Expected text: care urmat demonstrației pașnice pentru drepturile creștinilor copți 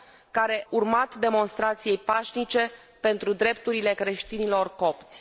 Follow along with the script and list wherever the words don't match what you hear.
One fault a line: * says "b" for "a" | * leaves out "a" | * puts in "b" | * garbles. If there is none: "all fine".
all fine